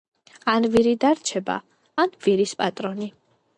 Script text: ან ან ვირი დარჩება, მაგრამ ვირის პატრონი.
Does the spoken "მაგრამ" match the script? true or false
false